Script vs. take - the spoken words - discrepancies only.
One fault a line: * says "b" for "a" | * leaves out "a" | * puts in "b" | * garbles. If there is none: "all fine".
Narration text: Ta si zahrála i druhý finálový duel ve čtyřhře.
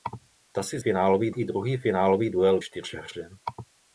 * says "finálový" for "zahrála"
* leaves out "ve"